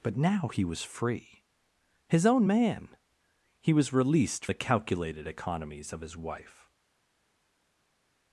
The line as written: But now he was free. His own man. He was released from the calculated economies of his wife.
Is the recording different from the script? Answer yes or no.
yes